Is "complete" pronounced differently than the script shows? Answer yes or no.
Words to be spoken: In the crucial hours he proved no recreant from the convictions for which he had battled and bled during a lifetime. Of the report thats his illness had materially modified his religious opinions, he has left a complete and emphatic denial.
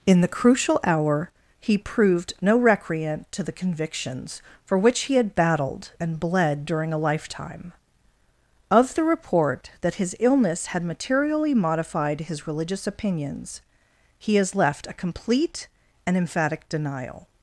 no